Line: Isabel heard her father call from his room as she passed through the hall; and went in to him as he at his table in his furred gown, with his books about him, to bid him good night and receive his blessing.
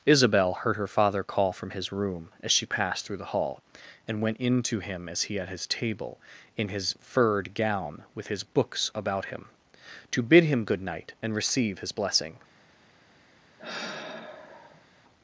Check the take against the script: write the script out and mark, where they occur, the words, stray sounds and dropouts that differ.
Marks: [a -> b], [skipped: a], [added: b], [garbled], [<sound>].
Isabel heard her father call from his room as she passed through the hall; and went in to him as he at his table in his furred gown, with his books about him, to bid him good night and receive his blessing. [sigh]